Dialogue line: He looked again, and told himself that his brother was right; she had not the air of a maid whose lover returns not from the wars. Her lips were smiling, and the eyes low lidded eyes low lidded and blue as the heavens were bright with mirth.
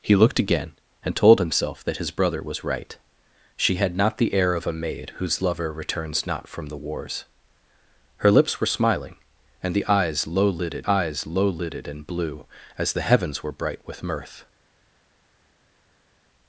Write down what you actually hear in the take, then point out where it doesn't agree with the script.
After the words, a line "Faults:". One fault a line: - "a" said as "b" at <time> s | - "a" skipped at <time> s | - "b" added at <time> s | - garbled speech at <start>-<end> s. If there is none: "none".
He looked again, and told himself that his brother was right; she had not the air of a maid whose lover returns not from the wars. Her lips were smiling, and the eyes low lidded eyes low lidded and blue as the heavens were bright with mirth.
Faults:
none